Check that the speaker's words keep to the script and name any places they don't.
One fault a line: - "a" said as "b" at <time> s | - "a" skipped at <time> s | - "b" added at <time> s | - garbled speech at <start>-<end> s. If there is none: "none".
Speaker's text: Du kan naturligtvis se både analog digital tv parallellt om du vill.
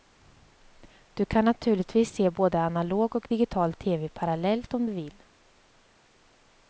- "och" added at 3.1 s